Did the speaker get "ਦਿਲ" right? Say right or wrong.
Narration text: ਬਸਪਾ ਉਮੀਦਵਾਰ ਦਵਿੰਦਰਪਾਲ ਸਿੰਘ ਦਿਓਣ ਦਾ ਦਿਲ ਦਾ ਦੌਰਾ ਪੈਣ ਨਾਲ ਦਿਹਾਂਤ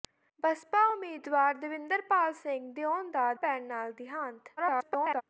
wrong